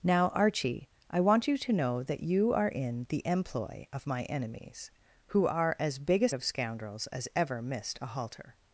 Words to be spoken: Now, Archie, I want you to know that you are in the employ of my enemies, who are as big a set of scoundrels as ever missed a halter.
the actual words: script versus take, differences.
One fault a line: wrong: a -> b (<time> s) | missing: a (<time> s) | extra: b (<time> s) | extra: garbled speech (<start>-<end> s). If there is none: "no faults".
missing: set (6.3 s)